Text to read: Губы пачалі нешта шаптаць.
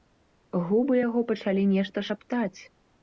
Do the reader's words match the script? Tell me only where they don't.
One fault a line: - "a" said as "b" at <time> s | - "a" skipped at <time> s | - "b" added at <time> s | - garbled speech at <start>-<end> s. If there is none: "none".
- "яго" added at 1.1 s